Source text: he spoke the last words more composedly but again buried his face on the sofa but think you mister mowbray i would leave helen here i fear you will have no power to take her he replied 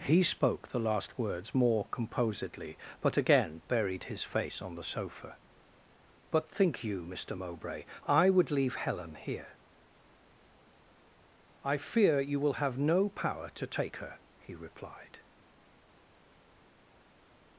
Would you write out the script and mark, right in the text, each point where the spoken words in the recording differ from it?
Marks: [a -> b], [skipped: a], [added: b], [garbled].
he spoke the last words more composedly but again buried his face on the sofa but think you mister mowbray i would leave helen here i fear you will have no power to take her he replied